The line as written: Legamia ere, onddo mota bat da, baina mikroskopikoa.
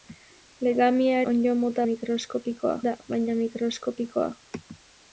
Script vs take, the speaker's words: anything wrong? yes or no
yes